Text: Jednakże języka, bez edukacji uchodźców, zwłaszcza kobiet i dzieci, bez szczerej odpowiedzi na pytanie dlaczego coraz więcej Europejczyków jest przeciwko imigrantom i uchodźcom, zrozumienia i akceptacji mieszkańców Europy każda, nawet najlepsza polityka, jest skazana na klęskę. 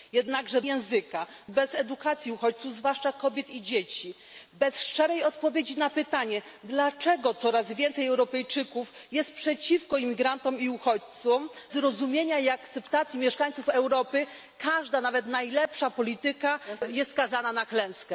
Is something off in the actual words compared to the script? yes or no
no